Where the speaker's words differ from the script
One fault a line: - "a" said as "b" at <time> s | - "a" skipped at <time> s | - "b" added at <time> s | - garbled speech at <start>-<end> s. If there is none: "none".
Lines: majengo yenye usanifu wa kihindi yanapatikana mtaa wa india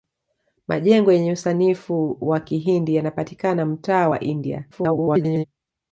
- garbled speech at 4.7-5.4 s